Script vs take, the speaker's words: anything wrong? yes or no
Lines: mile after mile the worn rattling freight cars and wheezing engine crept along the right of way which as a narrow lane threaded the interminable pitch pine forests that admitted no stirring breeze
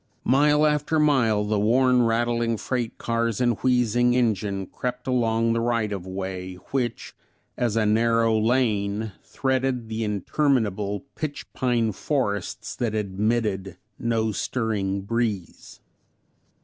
no